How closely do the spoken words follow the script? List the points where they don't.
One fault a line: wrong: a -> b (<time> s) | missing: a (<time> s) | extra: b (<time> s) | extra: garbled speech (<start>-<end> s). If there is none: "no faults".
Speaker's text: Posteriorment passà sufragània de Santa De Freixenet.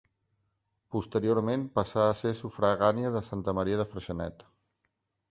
extra: a ser (2.0 s)
extra: Maria (3.6 s)